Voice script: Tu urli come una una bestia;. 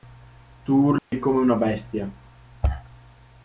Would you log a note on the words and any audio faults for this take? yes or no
yes